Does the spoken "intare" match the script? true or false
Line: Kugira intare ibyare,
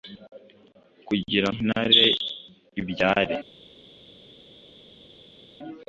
true